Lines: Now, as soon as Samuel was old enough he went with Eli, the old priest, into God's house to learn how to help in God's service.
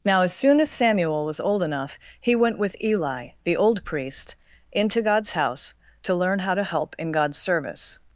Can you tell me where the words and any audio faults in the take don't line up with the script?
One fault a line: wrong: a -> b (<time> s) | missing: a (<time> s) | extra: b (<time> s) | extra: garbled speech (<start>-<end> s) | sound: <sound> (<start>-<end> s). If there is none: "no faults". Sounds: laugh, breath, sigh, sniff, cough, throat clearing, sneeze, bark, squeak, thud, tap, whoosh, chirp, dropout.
no faults